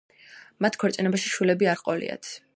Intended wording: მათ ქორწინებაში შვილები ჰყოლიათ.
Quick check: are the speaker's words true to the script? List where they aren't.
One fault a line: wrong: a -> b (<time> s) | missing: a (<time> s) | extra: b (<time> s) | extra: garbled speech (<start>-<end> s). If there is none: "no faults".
extra: არ (1.7 s)